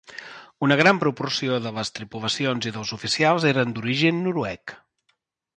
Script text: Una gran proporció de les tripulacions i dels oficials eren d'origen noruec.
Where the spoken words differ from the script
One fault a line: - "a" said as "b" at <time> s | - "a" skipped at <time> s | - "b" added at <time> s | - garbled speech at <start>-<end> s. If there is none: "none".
none